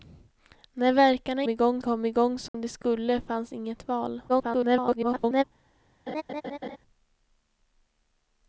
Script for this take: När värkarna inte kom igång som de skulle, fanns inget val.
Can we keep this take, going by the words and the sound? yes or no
no